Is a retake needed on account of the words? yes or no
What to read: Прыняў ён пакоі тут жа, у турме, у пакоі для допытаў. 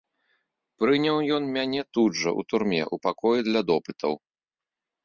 yes